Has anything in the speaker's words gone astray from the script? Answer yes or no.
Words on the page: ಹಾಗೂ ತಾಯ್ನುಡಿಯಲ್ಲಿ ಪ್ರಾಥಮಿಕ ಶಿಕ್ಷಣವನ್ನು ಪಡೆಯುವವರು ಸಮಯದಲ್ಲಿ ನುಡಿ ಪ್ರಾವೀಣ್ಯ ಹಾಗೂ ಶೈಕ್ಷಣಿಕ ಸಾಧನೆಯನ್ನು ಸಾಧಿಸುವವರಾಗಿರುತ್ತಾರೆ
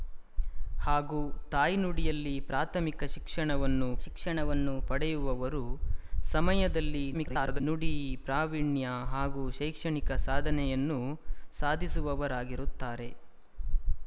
yes